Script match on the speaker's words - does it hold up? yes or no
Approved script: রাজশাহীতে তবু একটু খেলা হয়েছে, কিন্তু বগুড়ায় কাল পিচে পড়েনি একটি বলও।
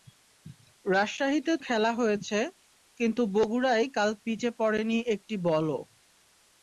no